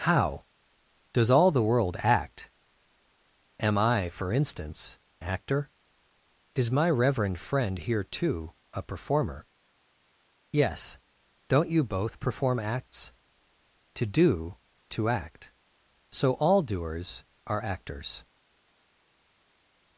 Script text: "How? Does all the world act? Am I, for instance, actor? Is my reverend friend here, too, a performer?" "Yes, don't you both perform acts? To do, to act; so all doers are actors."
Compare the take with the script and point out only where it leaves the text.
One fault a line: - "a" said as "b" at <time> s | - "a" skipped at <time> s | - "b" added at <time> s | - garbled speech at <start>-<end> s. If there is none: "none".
none